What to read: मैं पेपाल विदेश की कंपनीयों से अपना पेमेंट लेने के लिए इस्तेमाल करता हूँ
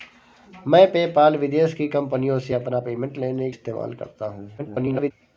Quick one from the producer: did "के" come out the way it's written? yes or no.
no